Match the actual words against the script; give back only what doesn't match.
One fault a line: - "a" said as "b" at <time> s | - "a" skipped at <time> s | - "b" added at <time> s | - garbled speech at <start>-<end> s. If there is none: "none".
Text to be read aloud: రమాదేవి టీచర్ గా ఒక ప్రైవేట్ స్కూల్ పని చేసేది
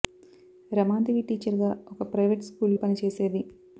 none